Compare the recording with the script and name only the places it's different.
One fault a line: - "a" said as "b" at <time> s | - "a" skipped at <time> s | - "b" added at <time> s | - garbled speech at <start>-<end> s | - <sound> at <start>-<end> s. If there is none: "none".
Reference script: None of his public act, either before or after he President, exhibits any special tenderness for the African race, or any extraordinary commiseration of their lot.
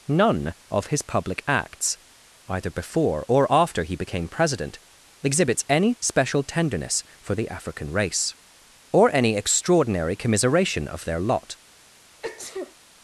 - "act" said as "acts" at 1.5 s
- "became" added at 4.0 s
- sneeze at 12.2-12.7 s